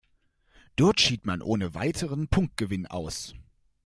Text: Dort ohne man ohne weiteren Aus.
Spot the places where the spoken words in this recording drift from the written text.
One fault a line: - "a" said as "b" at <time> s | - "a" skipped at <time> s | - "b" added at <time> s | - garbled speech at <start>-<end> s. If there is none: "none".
- "ohne" said as "schied" at 1.0 s
- "Punktgewinn" added at 2.3 s